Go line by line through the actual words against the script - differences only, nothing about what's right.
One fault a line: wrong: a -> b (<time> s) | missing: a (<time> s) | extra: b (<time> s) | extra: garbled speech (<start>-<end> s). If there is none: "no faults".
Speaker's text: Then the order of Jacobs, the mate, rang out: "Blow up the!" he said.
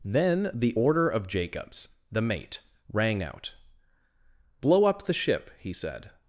extra: ship (5.1 s)